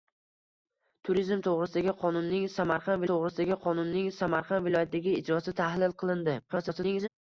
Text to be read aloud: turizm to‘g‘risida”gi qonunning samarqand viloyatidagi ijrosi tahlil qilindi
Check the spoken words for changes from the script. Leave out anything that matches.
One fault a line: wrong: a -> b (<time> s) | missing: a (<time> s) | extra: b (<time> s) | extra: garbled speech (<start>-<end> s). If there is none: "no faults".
extra: to‘g‘risida”gi qonunning samarqand (3.1 s)
extra: garbled speech (6.5-7.1 s)